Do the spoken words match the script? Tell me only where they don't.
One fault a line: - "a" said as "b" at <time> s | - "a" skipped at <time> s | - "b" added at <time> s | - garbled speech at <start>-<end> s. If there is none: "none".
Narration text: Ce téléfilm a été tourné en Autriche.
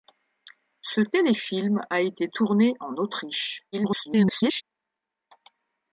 - garbled speech at 3.7-4.6 s